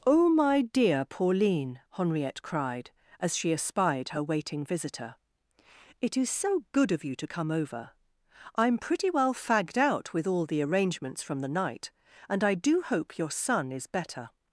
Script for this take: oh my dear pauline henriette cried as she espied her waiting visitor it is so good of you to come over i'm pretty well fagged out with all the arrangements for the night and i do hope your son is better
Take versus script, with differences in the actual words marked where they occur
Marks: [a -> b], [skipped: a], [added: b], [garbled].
oh my dear pauline henriette cried as she espied her waiting visitor it is so good of you to come over i'm pretty well fagged out with all the arrangements [for -> from] the night and i do hope your son is better